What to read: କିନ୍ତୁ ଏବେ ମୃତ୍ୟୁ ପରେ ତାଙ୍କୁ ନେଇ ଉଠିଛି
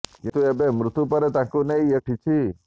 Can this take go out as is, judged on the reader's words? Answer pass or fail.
pass